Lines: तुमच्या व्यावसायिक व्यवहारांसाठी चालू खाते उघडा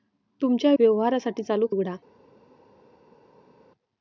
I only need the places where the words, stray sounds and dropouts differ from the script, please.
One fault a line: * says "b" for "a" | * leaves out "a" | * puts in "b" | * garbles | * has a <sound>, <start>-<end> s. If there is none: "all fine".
* leaves out "व्यावसायिक"
* leaves out "खाते"